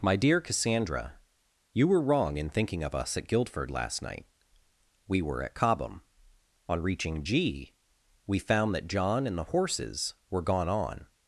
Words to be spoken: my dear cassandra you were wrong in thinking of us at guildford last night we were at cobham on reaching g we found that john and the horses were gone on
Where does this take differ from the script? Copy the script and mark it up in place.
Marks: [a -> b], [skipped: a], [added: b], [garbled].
my dear cassandra you were wrong in thinking of us at guildford last night we were at cobham on reaching g we found that john and the horses were gone on